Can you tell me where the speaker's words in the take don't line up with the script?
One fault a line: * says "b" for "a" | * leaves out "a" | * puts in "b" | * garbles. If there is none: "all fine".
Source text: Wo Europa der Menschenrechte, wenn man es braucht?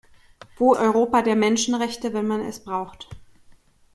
all fine